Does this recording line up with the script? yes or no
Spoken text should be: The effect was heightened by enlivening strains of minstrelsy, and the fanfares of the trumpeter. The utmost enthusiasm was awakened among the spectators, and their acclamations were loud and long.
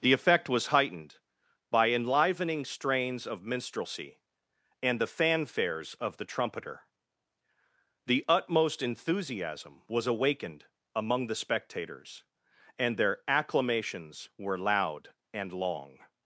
yes